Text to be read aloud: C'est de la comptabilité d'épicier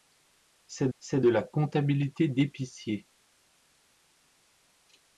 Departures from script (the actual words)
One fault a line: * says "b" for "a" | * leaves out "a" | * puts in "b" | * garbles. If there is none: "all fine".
* puts in "c'est"